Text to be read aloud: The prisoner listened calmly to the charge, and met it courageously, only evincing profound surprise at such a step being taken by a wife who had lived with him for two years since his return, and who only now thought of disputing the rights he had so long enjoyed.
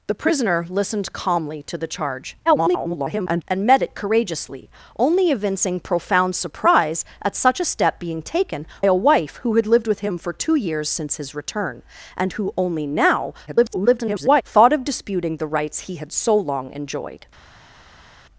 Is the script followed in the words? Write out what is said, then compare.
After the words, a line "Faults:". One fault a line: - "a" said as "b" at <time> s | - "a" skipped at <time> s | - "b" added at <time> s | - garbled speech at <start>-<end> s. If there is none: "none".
The prisoner listened calmly to the charge, [garbled] and met it courageously, only evincing profound surprise at such a step being taken a wife who had lived with him for two years since his return, and who only now [garbled] thought of disputing the rights he had so long enjoyed.
Faults:
- garbled speech at 2.5-3.4 s
- "by" skipped at 8.7 s
- garbled speech at 13.5-14.4 s